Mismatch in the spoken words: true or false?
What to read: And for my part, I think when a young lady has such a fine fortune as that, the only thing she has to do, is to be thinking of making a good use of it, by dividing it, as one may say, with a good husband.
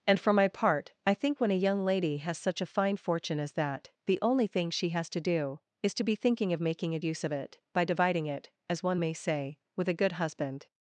true